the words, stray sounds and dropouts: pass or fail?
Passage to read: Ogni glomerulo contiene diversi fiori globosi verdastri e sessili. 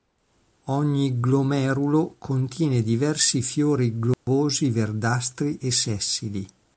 fail